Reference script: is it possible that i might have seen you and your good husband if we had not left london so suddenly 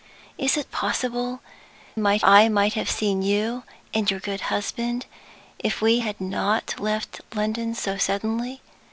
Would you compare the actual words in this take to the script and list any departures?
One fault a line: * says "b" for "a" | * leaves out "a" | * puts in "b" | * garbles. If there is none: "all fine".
* says "might" for "that"